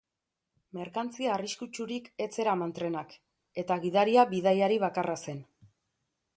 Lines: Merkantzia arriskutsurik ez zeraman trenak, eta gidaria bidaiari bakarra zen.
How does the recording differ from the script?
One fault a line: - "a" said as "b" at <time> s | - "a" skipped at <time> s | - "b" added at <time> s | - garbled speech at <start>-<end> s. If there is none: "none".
none